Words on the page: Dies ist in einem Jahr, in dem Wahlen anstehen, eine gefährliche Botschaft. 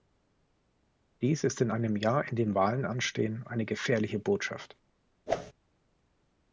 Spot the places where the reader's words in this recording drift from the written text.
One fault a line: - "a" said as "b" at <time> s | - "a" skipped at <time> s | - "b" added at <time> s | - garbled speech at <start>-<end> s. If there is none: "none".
none